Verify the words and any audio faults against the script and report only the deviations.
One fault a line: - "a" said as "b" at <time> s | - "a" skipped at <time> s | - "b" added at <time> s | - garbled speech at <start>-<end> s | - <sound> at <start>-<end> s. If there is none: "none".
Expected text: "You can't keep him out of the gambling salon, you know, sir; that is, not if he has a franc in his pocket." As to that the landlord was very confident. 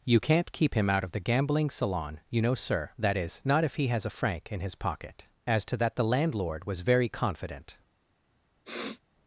- sniff at 8.6-9.0 s